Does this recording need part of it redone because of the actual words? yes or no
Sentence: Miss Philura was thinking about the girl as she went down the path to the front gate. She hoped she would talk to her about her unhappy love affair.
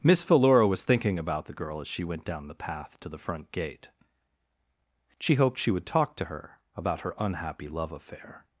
no